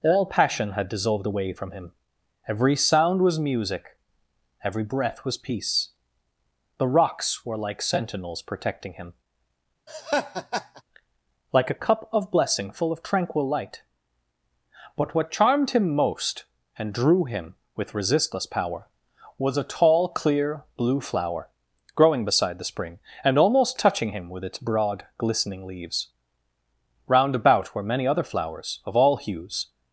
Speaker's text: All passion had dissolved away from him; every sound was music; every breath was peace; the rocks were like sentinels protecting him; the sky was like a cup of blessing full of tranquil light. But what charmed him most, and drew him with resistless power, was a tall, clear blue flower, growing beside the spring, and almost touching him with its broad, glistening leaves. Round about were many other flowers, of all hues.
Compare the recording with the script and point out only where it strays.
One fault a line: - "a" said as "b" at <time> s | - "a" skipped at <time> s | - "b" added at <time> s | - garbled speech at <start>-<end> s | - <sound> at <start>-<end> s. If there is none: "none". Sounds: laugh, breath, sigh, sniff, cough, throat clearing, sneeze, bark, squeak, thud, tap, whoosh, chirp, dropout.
- "the sky was" skipped at 9.1 s
- laugh at 9.9-10.8 s